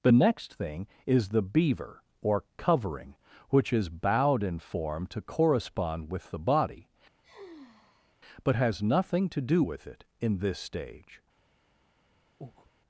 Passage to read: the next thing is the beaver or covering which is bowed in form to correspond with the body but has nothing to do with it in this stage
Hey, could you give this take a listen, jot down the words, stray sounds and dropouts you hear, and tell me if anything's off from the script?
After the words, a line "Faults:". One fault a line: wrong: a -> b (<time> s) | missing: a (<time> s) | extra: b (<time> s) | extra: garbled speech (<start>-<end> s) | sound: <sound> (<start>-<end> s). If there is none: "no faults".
the next thing is the beaver or covering which is bowed in form to correspond with the body but has nothing to do with it in this stage
Faults:
sound: sigh (7.2-8.2 s)
sound: breath (12.4-12.7 s)